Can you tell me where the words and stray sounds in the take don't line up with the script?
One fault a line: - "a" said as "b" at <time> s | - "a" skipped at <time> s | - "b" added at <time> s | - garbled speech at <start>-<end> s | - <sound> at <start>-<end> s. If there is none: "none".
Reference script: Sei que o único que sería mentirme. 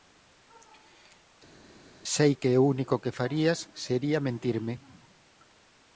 - "farías" added at 3.2 s